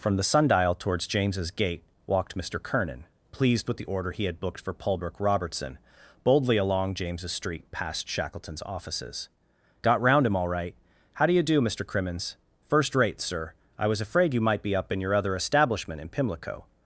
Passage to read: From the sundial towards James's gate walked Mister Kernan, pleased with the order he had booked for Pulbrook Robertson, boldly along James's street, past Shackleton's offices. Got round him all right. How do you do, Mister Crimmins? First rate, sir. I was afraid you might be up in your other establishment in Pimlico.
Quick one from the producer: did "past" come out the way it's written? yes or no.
yes